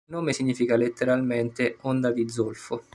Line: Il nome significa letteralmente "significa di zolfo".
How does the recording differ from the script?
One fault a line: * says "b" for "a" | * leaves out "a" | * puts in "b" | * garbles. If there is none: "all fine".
* says "onda" for "significa"